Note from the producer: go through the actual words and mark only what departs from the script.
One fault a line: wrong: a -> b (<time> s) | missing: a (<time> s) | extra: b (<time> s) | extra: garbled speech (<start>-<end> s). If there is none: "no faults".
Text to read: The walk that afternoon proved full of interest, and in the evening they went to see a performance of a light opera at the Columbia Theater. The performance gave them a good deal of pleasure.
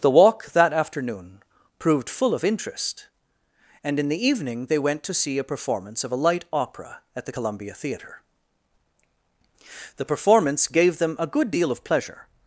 no faults